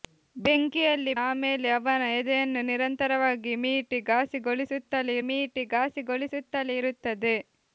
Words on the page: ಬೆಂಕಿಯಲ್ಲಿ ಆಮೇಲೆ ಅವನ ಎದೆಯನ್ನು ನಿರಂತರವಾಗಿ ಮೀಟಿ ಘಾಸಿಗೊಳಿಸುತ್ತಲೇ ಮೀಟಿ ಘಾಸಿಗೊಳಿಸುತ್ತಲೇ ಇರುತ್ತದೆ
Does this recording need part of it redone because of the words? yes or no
no